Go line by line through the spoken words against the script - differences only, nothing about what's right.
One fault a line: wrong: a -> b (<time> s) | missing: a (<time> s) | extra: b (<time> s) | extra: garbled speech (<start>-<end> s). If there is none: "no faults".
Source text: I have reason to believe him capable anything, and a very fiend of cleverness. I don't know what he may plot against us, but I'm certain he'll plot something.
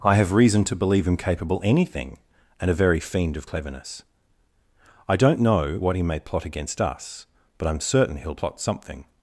no faults